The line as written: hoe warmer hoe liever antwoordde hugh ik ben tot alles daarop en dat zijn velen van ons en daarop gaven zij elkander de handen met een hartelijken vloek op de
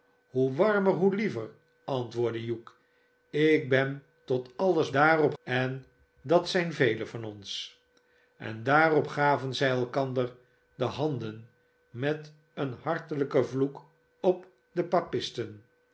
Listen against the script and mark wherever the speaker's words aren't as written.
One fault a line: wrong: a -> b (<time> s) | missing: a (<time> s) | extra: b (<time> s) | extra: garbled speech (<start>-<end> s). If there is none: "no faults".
no faults